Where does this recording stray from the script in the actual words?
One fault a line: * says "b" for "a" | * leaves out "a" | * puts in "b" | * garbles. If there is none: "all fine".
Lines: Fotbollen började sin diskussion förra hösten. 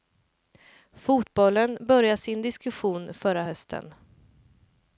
all fine